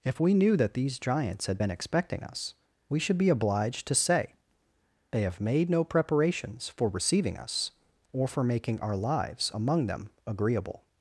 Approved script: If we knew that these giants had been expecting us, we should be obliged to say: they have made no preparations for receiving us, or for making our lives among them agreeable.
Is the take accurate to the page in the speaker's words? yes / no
yes